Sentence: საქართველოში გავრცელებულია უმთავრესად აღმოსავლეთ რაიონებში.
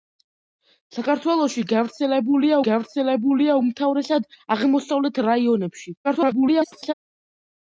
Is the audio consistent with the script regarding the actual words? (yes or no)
no